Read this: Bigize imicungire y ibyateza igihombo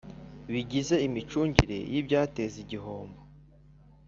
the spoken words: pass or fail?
pass